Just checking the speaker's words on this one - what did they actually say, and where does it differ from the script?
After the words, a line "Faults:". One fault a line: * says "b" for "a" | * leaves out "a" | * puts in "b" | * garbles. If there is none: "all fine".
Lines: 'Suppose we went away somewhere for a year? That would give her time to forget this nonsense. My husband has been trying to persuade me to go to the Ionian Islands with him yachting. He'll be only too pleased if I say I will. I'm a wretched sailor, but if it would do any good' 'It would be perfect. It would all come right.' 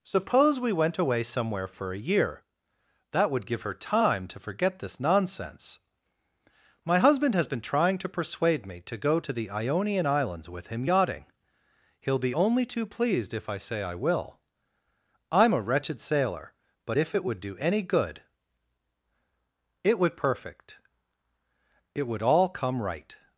'Suppose we went away somewhere for a year? That would give her time to forget this nonsense. My husband has been trying to persuade me to go to the Ionian Islands with him yachting. He'll be only too pleased if I say I will. I'm a wretched sailor, but if it would do any good' 'It would perfect. It would all come right.'
Faults:
* leaves out "be"